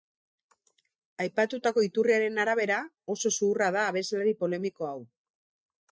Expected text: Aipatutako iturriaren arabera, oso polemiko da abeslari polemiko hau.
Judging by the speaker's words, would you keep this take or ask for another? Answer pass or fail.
fail